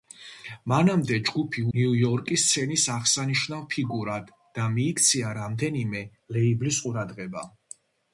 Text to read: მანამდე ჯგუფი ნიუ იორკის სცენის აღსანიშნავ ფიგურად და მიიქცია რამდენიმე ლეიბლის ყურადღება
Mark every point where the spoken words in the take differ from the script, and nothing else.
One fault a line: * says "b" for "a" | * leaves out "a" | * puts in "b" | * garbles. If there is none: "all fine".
all fine